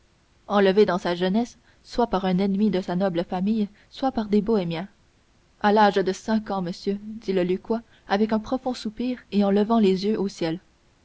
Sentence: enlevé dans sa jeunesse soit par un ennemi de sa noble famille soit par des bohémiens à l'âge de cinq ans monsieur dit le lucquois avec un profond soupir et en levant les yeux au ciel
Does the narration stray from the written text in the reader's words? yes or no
no